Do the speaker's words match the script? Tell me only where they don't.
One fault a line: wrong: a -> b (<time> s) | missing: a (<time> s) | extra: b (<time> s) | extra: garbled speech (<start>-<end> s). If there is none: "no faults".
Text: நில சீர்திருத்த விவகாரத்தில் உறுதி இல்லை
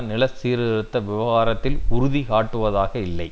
extra: காட்டுவதாக (2.3 s)